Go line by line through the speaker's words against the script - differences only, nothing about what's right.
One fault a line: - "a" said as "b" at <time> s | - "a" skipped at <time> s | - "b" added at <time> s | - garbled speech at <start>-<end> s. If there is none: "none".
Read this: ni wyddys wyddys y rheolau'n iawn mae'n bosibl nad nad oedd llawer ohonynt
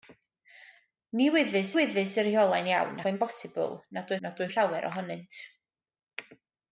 none